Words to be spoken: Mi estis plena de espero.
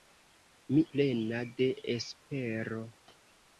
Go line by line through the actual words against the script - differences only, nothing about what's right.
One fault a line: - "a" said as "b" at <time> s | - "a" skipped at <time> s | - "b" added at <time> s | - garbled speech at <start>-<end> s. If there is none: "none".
- "estis" skipped at 0.8 s